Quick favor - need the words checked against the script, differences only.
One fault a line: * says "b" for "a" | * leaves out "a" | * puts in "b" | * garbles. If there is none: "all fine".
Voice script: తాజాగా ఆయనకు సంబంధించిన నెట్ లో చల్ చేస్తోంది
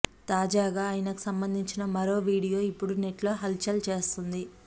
* puts in "మరో వీడియో ఇప్పుడు"
* puts in "హల్"